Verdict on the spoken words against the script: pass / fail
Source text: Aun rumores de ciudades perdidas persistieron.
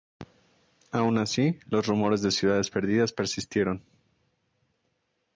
fail